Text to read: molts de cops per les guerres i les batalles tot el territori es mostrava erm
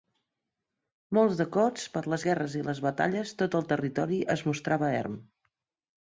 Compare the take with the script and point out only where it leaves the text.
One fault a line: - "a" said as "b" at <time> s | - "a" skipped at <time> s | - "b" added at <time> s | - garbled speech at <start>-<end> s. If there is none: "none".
none